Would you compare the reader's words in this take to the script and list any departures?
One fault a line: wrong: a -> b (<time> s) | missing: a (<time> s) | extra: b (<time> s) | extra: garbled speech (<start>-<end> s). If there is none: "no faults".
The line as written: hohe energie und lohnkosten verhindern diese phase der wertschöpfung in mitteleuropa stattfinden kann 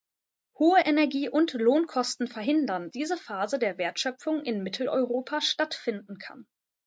no faults